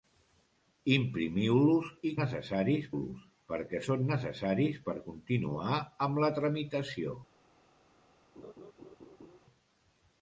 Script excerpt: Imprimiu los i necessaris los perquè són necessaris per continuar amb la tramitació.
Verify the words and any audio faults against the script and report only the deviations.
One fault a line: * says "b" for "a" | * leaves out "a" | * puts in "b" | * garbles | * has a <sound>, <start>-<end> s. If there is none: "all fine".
* has a laugh, 8.4-9.4 s